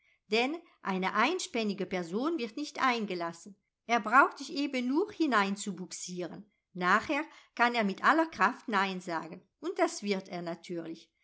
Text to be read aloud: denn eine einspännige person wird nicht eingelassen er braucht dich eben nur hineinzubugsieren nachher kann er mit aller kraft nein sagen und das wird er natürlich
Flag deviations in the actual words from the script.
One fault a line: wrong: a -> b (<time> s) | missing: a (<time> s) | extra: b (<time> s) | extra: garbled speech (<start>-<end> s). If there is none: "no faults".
no faults